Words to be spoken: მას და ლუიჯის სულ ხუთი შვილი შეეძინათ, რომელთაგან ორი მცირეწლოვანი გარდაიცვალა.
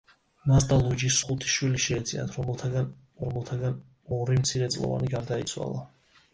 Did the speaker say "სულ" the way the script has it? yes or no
no